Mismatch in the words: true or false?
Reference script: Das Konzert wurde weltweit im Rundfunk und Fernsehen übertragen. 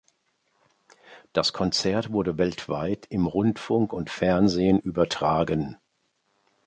false